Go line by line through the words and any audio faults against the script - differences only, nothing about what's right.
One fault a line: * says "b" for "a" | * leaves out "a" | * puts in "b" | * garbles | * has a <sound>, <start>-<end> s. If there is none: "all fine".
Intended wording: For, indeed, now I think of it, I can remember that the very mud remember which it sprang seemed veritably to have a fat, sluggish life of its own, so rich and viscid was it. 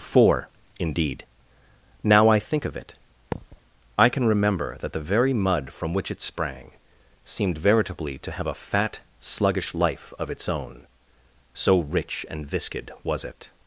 * has a thud, 3.3-3.6 s
* says "from" for "remember"